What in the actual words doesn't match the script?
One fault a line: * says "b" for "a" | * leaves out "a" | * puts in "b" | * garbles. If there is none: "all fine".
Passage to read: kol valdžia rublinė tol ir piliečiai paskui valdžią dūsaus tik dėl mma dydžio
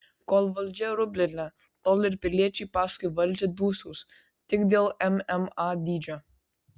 all fine